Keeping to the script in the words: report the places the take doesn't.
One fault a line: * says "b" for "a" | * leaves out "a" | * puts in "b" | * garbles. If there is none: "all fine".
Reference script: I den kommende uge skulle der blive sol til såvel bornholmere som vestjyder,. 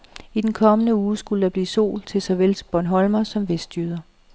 all fine